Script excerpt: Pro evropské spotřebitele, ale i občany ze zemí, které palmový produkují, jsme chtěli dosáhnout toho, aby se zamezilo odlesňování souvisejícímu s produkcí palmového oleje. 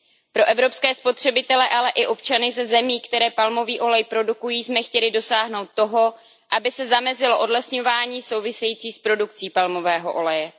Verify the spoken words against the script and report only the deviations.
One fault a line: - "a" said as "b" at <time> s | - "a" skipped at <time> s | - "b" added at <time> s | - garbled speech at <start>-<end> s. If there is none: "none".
- "olej" added at 3.8 s